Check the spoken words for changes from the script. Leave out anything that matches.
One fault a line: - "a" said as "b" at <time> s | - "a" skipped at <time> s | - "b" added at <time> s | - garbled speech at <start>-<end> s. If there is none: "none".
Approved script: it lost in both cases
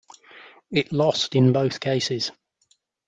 none